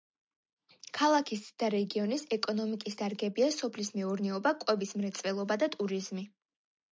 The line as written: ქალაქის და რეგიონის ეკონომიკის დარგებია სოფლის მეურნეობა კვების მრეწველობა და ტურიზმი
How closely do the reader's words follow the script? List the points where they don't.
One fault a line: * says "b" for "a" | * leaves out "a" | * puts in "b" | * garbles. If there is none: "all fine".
all fine